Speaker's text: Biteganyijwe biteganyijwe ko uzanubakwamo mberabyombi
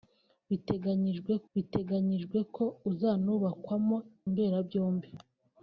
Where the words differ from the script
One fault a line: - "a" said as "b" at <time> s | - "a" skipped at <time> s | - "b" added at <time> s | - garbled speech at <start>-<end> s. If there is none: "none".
none